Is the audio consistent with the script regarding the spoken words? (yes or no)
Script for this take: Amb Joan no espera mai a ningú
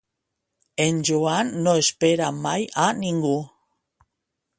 no